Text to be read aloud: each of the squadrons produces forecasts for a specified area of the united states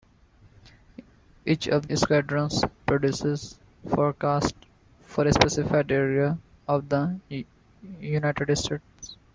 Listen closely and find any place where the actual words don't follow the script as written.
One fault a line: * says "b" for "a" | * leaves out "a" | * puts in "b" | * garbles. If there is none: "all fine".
* leaves out "the"